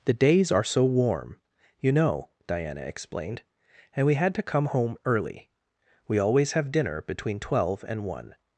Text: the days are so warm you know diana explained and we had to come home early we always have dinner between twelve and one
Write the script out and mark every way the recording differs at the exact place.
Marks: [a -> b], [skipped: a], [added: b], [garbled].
the days are so warm you know diana explained and we had to come home early we always have dinner between twelve and one